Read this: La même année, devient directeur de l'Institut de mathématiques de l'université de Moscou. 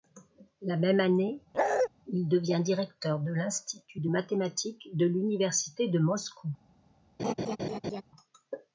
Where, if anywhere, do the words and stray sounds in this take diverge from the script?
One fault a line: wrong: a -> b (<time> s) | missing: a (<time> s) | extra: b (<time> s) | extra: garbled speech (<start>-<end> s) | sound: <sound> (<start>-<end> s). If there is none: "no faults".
sound: bark (1.5-1.9 s)
extra: il (2.1 s)
sound: laugh (7.2-8.0 s)